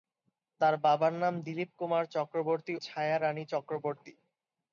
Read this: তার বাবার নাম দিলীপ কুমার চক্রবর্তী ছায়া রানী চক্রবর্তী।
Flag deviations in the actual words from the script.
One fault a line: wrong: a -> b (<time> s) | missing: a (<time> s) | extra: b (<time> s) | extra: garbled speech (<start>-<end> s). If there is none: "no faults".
no faults